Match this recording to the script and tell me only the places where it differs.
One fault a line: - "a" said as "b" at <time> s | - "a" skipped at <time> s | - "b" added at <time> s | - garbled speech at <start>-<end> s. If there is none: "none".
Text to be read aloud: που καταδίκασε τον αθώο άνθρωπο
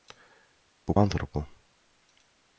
- "καταδίκασε τον αθώο" skipped at 0.9 s